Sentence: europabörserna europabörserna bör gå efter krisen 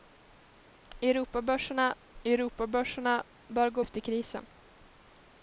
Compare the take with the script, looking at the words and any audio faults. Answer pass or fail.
pass